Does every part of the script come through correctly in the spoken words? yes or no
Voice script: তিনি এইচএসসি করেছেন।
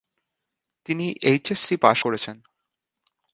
no